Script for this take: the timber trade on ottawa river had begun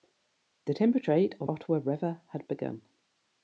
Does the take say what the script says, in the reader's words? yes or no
yes